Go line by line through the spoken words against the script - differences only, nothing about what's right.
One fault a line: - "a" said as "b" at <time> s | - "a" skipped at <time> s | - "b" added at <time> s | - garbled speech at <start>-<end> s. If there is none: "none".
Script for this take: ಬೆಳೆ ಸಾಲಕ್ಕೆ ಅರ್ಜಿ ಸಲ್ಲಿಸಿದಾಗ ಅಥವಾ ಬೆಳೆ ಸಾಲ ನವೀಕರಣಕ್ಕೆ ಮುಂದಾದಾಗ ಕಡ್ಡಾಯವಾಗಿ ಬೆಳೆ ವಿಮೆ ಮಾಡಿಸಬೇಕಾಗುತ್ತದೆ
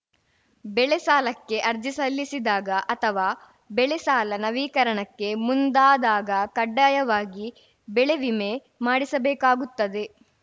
none